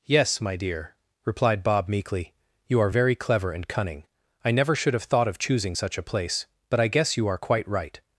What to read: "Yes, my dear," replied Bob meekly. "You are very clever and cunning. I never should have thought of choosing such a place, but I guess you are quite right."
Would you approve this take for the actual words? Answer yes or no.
yes